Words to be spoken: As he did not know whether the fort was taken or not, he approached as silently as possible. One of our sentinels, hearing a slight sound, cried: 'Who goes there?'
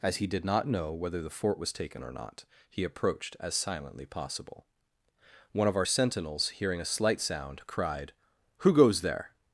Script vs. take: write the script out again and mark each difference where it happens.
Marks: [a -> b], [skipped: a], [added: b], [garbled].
As he did not know whether the fort was taken or not, he approached as silently [skipped: as] possible. One of our sentinels, hearing a slight sound, cried: 'Who goes there?'